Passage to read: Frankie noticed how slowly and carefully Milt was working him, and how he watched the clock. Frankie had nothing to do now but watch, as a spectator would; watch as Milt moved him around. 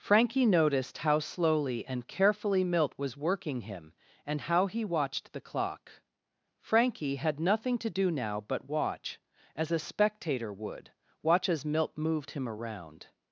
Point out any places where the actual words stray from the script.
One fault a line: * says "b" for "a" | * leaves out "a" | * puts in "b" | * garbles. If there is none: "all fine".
all fine